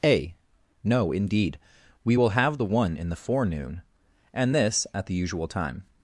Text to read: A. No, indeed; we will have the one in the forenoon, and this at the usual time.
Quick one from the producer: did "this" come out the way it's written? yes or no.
yes